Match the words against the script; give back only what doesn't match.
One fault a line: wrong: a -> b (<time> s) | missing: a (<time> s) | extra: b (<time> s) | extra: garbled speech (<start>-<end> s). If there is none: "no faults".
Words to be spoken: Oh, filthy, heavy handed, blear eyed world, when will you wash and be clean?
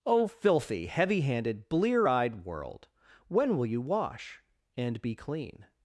no faults